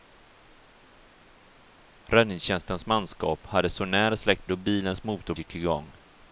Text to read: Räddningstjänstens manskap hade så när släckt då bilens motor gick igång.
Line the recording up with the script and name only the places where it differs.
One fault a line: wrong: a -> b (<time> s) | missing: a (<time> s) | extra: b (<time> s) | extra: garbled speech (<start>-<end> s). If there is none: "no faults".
no faults